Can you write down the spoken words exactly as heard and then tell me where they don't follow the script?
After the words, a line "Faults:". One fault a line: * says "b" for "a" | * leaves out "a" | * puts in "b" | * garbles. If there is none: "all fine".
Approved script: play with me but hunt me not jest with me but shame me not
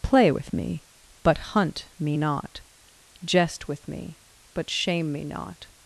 play with me but hunt me not jest with me but shame me not
Faults:
all fine